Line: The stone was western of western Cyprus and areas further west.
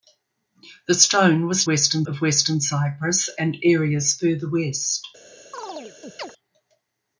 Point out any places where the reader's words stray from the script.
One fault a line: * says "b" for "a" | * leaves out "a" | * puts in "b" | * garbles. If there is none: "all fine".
all fine